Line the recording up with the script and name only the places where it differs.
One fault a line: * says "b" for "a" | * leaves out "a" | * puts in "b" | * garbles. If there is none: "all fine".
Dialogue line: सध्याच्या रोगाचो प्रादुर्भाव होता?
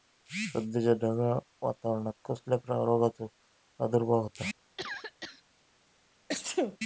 * puts in "ढगाळ वातावरणान कसल्या"